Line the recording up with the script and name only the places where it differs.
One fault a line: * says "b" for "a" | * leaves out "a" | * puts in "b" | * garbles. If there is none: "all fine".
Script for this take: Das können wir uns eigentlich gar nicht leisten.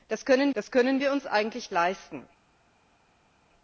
* puts in "das können"
* leaves out "gar nicht"